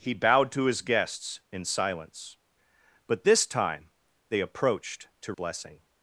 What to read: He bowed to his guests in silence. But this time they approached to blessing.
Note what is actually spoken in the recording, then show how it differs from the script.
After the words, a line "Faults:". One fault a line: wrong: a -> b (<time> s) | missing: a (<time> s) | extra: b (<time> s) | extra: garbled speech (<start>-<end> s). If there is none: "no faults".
He bowed to his guests in silence. But this time they approached to blessing.
Faults:
no faults